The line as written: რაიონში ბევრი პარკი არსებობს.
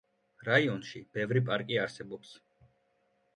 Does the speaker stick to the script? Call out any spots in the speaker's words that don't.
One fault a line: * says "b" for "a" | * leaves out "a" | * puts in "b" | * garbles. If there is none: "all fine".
all fine